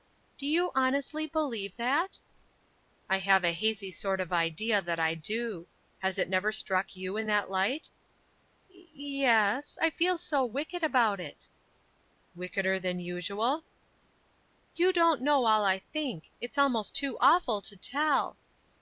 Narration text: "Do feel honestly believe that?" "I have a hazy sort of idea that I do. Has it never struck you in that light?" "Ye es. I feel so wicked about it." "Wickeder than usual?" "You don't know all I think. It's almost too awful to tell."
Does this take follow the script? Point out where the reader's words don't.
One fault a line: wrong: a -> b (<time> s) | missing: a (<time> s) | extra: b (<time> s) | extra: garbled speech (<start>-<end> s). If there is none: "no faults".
wrong: feel -> you (0.5 s)